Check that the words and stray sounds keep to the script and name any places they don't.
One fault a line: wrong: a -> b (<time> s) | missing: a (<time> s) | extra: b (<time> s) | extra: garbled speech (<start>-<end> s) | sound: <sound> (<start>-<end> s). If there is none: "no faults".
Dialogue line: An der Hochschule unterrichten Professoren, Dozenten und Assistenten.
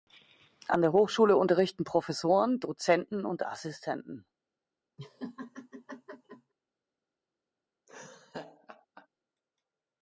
sound: laugh (5.0-6.5 s)
sound: laugh (7.9-9.1 s)